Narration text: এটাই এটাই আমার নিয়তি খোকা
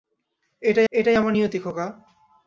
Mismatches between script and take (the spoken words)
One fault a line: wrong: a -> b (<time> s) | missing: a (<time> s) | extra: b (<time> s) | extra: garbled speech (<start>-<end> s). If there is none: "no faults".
no faults